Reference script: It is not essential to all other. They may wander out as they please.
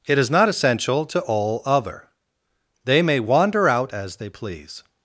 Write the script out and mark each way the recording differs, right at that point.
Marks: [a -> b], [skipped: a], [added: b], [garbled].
It is not essential to all other. They may wander out as they please.